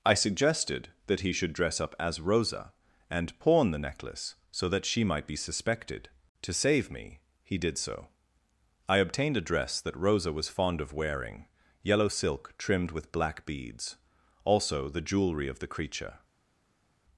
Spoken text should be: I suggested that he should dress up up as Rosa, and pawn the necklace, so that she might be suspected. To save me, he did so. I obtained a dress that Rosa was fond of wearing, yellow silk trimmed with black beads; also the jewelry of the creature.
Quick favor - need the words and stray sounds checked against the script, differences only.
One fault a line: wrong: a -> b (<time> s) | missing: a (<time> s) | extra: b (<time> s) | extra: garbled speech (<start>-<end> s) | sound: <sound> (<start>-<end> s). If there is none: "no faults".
missing: up (1.9 s)